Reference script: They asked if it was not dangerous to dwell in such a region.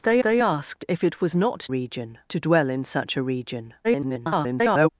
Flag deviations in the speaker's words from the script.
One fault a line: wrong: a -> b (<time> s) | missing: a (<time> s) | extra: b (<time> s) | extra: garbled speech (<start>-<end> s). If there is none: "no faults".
extra: they (0.2 s)
wrong: dangerous -> region (1.7 s)
extra: garbled speech (3.8-4.9 s)